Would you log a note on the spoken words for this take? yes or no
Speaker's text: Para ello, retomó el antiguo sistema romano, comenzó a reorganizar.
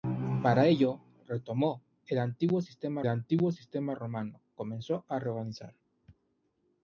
yes